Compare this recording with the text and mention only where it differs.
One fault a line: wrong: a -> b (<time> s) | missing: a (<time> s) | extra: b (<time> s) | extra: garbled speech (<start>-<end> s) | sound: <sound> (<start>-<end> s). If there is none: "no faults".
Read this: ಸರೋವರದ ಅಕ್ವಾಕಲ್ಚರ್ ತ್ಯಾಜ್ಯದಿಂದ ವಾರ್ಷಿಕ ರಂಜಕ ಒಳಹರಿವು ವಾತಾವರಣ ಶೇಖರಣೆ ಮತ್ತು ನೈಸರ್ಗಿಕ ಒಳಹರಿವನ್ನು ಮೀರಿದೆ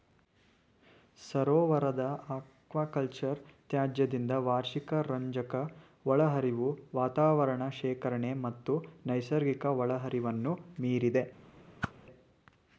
sound: whoosh (11.8-11.9 s)